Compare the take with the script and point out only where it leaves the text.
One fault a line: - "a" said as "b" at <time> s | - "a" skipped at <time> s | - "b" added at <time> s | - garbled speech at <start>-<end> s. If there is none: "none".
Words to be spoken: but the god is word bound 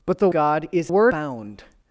none